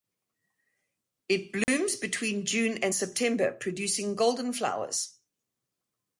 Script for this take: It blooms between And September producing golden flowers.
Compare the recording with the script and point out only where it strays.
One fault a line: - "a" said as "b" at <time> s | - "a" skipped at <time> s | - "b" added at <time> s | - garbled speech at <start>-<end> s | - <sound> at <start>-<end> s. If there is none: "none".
- dropout at 1.6-1.7 s
- "June" added at 2.4 s